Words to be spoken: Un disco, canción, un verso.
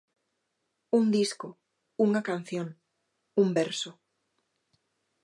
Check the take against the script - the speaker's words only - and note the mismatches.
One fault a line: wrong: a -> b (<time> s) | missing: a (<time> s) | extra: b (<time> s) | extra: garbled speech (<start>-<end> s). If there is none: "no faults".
extra: unha (2.0 s)